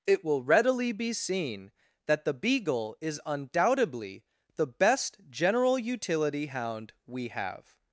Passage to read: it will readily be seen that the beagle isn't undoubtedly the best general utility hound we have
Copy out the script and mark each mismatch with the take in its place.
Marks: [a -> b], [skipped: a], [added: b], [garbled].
it will readily be seen that the beagle [isn't -> is] undoubtedly the best general utility hound we have